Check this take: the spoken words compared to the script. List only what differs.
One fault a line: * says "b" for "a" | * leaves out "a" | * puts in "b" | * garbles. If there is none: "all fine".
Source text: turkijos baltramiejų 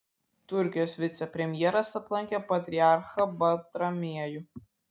* puts in "vicepremjeras aplankė patriarchą"